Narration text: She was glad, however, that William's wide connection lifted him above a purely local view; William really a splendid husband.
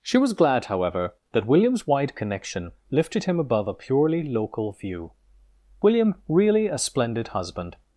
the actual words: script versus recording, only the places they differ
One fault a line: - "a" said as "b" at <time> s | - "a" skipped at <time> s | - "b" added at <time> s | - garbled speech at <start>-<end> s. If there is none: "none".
none